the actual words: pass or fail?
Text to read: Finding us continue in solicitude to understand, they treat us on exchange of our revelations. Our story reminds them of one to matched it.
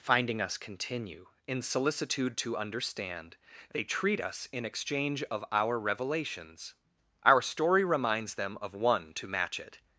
fail